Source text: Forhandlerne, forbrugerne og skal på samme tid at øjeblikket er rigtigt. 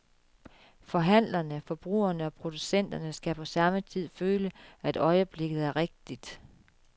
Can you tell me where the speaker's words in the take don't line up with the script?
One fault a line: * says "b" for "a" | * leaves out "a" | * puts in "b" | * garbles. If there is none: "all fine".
* puts in "producenterne"
* puts in "føle"